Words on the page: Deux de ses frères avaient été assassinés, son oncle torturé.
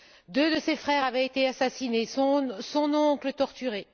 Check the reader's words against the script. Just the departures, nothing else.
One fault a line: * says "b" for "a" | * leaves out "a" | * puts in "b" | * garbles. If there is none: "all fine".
all fine